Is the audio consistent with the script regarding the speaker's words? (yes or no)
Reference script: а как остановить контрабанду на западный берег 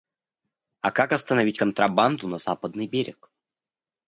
yes